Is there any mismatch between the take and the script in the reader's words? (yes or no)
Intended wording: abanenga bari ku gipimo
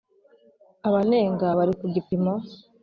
no